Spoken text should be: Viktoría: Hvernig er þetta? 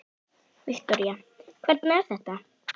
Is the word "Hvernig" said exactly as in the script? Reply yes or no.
yes